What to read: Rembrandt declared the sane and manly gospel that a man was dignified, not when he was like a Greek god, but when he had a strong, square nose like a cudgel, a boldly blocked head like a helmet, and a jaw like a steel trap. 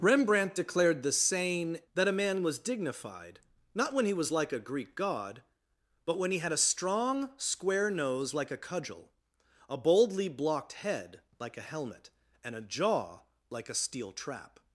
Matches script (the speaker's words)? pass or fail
fail